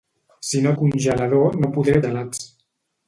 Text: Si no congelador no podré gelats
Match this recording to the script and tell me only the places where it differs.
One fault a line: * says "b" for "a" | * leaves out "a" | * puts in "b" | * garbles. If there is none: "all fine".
all fine